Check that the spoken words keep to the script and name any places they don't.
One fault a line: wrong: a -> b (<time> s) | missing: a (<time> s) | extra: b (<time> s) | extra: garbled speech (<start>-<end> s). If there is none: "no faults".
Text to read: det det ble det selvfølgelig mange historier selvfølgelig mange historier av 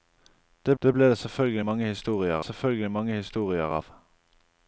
no faults